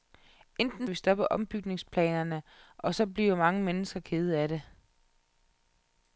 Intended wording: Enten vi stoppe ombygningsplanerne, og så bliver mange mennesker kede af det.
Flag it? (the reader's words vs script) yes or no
no